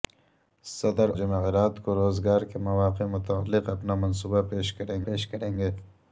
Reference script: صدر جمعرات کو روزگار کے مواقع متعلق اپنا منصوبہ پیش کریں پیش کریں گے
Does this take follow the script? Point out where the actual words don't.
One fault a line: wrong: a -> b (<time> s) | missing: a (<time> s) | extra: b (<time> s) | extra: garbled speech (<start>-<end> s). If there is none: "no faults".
no faults